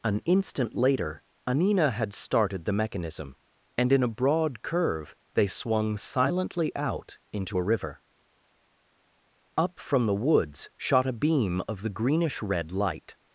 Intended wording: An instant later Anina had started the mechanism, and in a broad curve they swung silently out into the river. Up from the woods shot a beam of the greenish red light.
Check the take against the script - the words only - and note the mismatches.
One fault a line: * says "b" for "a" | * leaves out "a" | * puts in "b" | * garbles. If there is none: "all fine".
* says "a" for "the"